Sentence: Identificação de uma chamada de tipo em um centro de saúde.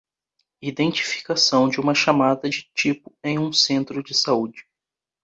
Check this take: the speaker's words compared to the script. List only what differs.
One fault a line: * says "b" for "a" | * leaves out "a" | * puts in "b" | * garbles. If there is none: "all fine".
all fine